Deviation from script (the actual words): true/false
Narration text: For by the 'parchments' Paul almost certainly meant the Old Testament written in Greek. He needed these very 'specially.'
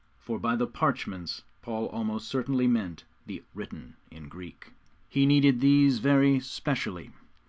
true